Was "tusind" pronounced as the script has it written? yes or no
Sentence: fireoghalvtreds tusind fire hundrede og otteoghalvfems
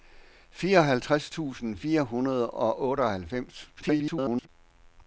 yes